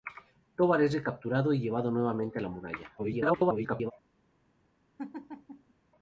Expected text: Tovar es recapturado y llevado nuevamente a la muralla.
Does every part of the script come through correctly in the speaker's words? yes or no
no